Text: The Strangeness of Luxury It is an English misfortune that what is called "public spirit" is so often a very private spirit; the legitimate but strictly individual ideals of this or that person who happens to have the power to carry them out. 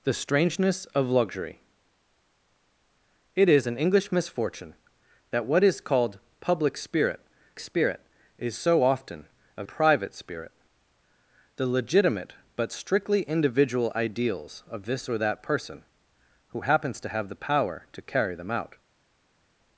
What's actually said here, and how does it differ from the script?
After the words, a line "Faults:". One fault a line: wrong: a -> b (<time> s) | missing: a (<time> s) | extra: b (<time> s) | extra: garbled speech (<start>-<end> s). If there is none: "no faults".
The Strangeness of Luxury It is an English misfortune that what is called "public spirit spirit" is so often a private spirit; the legitimate but strictly individual ideals of this or that person who happens to have the power to carry them out.
Faults:
extra: spirit (7.6 s)
missing: very (9.6 s)